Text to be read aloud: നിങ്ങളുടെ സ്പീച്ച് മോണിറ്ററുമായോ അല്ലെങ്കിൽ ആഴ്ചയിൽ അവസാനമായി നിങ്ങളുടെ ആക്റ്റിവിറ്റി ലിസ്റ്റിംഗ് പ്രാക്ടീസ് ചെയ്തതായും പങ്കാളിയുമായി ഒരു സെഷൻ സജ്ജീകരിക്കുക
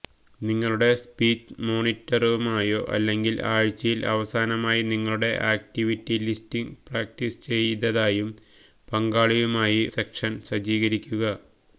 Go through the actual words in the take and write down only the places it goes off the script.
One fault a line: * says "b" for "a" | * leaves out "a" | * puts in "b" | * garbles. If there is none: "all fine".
* leaves out "ഒരു"